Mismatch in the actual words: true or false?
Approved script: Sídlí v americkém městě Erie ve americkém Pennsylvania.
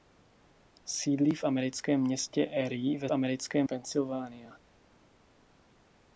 false